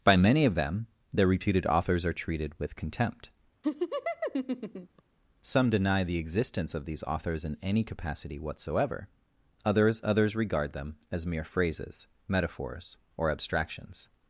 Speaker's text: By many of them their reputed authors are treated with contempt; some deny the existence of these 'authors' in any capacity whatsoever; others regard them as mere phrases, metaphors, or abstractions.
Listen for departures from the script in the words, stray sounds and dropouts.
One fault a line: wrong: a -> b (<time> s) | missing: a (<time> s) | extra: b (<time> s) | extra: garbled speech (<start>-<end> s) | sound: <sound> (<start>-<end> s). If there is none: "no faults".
sound: laugh (3.6-5.0 s)
extra: others (10.0 s)